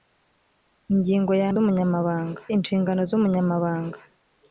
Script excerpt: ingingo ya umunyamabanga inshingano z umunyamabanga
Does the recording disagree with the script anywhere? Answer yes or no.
no